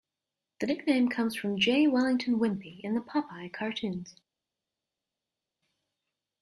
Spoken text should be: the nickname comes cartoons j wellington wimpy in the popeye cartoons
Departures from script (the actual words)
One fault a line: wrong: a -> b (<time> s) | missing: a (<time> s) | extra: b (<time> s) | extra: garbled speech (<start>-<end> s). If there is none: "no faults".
wrong: cartoons -> from (1.4 s)